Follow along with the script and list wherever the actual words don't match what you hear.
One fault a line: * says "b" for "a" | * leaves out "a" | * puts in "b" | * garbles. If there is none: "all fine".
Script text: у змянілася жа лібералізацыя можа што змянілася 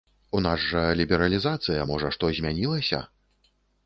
* says "нас" for "змянілася"